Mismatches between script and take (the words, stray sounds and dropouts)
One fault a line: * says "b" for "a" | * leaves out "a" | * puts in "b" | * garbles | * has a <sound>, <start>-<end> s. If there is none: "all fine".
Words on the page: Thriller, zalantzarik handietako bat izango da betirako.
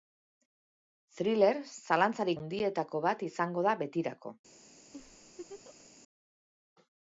* has a laugh, 4.9-5.9 s